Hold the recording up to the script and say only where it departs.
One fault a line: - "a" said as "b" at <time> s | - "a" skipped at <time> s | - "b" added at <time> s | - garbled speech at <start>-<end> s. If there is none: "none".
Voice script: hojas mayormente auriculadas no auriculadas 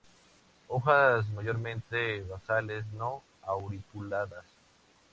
- "auriculadas" said as "basales" at 2.2 s